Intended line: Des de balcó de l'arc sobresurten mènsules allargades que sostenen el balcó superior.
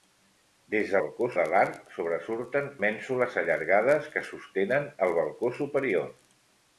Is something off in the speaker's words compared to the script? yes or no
no